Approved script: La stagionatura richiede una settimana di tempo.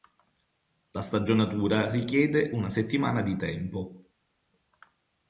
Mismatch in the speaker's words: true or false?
false